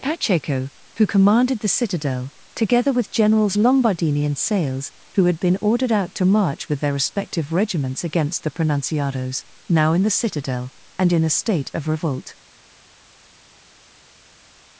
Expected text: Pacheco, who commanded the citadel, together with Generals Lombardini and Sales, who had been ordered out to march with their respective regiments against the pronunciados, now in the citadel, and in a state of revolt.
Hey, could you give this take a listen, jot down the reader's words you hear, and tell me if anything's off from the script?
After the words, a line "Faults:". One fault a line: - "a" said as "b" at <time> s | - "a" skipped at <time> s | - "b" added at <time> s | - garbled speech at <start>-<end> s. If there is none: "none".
Pacheco, who commanded the citadel, together with Generals Lombardini and Sales, who had been ordered out to march with their respective regiments against the pronunciados, now in the citadel, and in a state of revolt.
Faults:
none